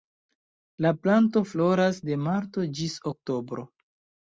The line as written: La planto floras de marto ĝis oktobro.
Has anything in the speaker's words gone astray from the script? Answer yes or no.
no